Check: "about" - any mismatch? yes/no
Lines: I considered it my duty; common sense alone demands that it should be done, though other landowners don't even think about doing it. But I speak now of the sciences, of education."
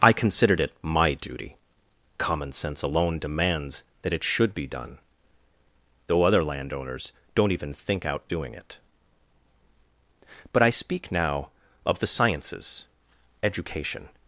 yes